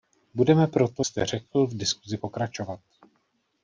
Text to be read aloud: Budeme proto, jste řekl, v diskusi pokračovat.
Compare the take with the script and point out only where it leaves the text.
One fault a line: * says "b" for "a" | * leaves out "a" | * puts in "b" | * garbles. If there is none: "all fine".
all fine